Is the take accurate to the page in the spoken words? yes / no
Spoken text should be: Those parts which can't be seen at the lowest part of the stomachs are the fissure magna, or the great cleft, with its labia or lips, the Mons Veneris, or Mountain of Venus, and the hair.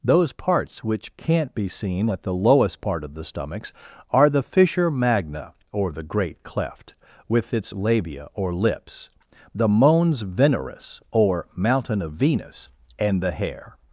yes